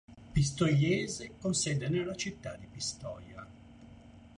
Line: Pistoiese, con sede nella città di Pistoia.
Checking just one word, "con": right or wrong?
right